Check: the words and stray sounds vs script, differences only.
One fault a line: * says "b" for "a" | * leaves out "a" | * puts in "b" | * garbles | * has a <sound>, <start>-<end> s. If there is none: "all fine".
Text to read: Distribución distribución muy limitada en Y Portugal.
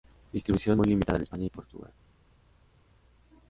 * leaves out "distribución"
* puts in "España"